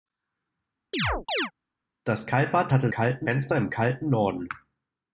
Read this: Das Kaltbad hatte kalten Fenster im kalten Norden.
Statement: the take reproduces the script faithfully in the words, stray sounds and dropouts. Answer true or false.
false